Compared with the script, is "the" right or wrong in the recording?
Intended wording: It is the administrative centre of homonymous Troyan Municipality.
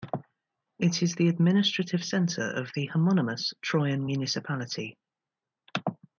right